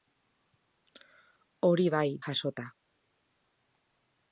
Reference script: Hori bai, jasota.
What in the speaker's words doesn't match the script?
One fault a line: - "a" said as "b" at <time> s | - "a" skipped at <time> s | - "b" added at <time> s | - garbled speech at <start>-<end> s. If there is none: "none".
none